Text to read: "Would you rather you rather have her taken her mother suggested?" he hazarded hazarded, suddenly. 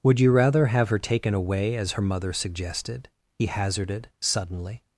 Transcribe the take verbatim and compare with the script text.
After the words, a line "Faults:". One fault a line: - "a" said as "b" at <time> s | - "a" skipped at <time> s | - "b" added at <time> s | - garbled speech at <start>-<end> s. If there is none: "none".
"Would you rather have her taken away as her mother suggested?" he hazarded, suddenly.
Faults:
- "you rather" skipped at 0.7 s
- "away as" added at 1.4 s
- "hazarded" skipped at 4.1 s